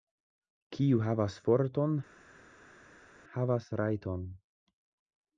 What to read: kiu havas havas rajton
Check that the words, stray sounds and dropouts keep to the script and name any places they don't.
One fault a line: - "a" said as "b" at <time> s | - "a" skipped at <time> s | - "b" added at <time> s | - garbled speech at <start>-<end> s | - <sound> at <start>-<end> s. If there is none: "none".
- "forton" added at 1.5 s